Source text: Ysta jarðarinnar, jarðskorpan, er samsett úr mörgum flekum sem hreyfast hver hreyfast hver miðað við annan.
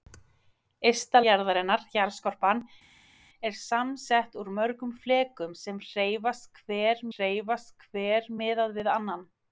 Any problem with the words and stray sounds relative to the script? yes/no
no